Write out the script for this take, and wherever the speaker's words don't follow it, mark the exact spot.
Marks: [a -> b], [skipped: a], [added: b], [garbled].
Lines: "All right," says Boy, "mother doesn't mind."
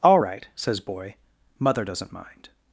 "All right," says Boy, "mother doesn't mind."